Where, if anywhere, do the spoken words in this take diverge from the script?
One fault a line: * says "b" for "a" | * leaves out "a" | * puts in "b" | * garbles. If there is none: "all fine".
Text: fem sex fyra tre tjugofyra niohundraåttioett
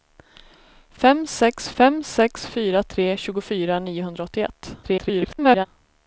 * puts in "fem sex"
* garbles